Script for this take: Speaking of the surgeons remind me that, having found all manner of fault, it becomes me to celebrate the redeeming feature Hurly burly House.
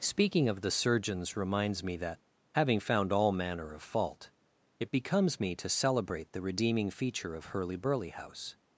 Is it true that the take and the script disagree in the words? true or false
true